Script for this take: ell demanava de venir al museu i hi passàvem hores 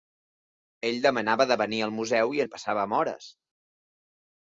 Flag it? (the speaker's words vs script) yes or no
no